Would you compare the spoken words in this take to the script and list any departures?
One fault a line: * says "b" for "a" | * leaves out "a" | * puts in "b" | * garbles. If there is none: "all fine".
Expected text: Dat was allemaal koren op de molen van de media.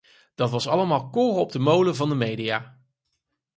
all fine